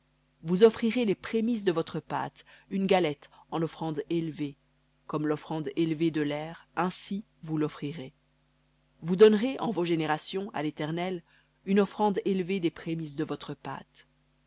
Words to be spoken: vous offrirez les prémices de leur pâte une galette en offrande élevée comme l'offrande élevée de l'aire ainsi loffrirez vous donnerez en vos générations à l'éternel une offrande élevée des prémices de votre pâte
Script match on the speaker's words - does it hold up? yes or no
no